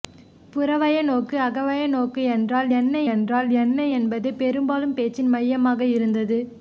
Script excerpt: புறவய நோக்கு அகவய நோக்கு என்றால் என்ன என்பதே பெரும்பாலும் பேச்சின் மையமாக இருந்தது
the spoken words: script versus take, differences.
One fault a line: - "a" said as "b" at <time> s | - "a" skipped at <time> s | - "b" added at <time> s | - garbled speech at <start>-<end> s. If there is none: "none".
- "என்றால் என்ன" added at 3.1 s